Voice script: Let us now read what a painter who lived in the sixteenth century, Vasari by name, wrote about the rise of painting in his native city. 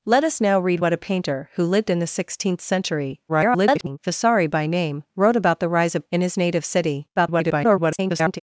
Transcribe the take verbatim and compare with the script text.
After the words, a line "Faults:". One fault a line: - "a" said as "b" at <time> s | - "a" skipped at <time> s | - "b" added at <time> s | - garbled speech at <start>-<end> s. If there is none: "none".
Let us now read what a painter who lived in the sixteenth century, [garbled] Vasari by name, wrote about the rise of in his native city. [garbled]
Faults:
- garbled speech at 3.3-4.0 s
- "painting" skipped at 6.0 s
- garbled speech at 7.2-8.4 s